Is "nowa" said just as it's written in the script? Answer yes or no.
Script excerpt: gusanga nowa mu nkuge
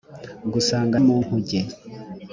no